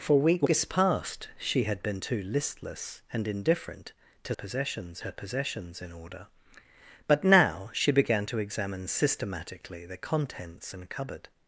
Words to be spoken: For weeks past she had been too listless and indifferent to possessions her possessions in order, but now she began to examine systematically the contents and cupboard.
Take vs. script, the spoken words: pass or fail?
pass